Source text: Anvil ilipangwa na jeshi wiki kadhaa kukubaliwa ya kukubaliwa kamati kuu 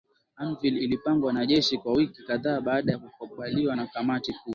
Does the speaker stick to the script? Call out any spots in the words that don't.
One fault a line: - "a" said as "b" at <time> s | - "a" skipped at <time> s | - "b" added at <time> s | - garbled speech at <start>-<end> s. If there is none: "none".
- "kwa" added at 1.8 s
- "kukubaliwa" said as "baada" at 2.6 s
- "na" added at 3.7 s